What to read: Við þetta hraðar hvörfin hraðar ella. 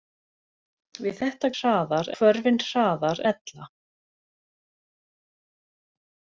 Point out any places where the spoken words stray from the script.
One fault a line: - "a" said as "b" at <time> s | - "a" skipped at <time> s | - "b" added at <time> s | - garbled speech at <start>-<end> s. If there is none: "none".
none